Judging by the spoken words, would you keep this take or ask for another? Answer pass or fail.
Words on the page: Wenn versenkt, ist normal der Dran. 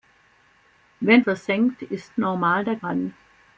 pass